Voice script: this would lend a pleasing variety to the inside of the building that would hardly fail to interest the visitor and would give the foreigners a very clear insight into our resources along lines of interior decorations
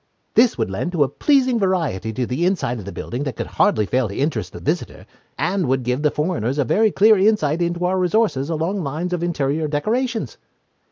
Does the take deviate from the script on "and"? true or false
false